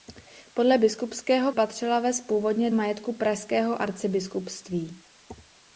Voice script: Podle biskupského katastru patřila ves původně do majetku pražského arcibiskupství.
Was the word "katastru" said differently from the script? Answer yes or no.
yes